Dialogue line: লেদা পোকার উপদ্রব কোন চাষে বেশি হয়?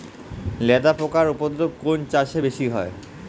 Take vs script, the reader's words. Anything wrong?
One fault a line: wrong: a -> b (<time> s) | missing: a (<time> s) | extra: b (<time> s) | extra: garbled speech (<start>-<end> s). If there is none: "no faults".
no faults